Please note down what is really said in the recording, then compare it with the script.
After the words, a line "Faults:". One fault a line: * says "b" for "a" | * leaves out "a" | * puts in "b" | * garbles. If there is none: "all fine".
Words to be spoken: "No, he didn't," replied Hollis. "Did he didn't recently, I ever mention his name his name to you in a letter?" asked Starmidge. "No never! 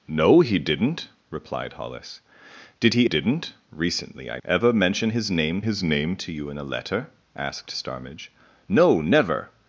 "No, he didn't," replied Hollis. "Did he didn't recently, I ever mention his name his name to you in a letter?" asked Starmidge. "No never!
Faults:
all fine